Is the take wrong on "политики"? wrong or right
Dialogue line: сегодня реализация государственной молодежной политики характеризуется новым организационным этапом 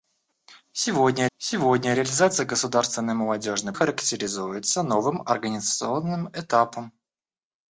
wrong